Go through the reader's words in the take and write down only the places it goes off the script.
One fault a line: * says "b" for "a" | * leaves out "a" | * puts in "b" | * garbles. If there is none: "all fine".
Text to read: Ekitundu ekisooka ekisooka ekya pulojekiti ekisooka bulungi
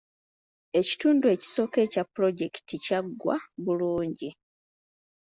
* leaves out "ekisooka"
* says "kyaggwa" for "ekisooka"